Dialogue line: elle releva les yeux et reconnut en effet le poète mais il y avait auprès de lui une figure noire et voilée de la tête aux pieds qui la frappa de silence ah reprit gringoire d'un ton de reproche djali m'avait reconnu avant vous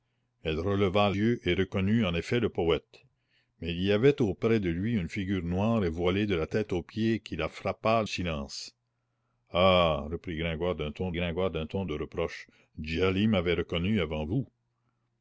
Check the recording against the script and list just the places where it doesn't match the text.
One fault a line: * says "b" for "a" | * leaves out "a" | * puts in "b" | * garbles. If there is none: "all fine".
* leaves out "les"
* leaves out "de"
* puts in "gringoire d'un ton"